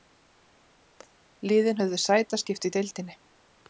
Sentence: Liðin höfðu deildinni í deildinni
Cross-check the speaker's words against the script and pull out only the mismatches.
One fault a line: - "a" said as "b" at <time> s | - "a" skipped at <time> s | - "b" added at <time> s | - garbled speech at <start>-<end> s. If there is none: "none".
- "deildinni" said as "sætaskipti" at 2.0 s